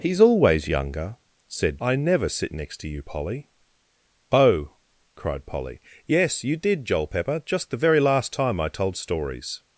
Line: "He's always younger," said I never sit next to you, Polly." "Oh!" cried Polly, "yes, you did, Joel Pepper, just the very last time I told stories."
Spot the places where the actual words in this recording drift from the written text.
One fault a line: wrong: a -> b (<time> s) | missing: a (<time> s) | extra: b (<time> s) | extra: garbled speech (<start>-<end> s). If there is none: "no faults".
no faults